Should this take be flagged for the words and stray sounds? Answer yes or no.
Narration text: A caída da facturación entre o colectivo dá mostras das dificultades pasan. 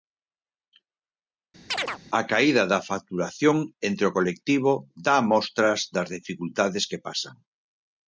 yes